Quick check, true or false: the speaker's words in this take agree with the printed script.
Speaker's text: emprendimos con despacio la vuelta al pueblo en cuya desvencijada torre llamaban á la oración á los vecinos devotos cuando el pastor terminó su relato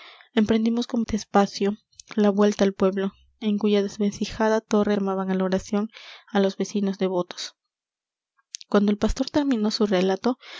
true